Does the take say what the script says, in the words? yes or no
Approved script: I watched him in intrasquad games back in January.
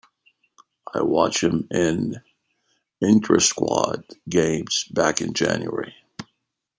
yes